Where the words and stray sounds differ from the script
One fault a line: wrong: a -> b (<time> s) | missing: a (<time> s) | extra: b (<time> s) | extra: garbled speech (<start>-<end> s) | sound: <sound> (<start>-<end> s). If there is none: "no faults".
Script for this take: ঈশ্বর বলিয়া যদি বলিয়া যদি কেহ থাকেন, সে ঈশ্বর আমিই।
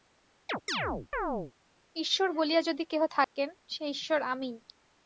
sound: chirp (0.5-1.5 s)
missing: বলিয়া যদি (2.8 s)
sound: dropout (3.2-3.4 s)